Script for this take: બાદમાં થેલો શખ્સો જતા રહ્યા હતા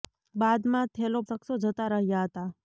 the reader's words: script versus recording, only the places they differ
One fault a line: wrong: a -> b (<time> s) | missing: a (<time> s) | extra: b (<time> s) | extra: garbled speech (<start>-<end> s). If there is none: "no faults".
no faults